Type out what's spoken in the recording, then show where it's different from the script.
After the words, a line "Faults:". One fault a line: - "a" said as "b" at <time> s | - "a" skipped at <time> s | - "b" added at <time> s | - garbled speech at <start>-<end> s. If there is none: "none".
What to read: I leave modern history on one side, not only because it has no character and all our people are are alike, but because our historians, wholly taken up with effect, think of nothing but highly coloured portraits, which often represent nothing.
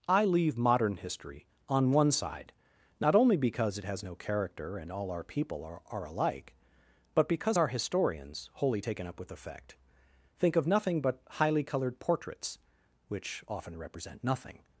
I leave modern history on one side, not only because it has no character and all our people are are alike, but because our historians, wholly taken up with effect, think of nothing but highly coloured portraits, which often represent nothing.
Faults:
none